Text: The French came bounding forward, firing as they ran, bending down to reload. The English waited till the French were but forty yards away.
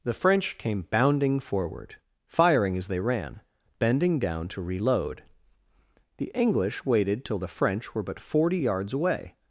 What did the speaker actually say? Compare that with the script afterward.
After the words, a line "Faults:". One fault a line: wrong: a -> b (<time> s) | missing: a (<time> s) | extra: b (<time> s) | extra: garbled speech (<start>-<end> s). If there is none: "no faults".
The French came bounding forward, firing as they ran, bending down to reload. The English waited till the French were but forty yards away.
Faults:
no faults